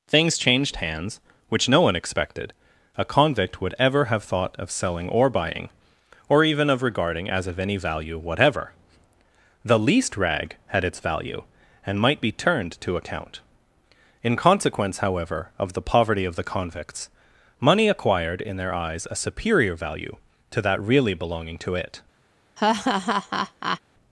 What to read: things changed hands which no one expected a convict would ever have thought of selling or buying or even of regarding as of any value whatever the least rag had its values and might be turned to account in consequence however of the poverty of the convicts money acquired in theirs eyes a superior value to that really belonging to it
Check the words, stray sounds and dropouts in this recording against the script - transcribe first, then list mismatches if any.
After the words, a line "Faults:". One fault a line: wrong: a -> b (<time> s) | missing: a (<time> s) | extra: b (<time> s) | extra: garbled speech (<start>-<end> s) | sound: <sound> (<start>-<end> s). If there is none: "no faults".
things changed hands which no one expected a convict would ever have thought of selling or buying or even of regarding as of any value whatever the least rag had its value and might be turned to account in consequence however of the poverty of the convicts money acquired in their eyes a superior value to that really belonging to it
Faults:
wrong: values -> value (11.0 s)
wrong: theirs -> their (18.6 s)
sound: laugh (22.6-23.8 s)